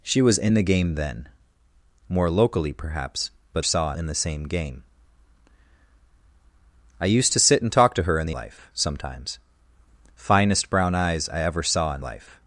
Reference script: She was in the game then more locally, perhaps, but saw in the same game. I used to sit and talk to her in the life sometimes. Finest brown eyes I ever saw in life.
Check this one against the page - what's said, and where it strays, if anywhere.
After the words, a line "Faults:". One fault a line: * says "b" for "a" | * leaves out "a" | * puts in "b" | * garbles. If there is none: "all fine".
She was in the game then more locally, perhaps, but saw in the same game. I used to sit and talk to her in the life sometimes. Finest brown eyes I ever saw in life.
Faults:
all fine